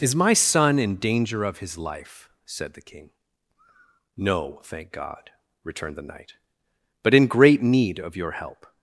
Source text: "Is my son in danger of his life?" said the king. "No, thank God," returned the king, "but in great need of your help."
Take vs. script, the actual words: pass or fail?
fail